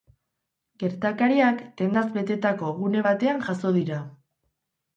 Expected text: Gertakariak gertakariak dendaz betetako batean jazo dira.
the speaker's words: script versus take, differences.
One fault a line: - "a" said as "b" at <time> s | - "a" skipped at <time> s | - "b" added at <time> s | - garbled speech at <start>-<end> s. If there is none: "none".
- "gertakariak" skipped at 1.6 s
- "gune" added at 2.8 s